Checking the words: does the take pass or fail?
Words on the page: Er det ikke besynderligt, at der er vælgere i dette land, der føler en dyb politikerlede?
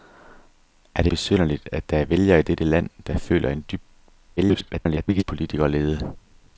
fail